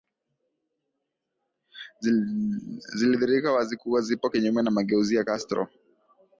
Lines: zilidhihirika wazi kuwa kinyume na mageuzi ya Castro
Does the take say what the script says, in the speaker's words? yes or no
no